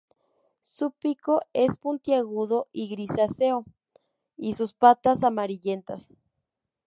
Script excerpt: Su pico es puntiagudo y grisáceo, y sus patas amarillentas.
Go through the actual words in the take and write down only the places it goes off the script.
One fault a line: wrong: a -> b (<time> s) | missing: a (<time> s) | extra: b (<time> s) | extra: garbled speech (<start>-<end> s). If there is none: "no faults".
no faults